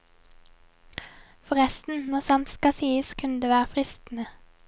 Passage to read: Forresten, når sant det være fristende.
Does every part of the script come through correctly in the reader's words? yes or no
no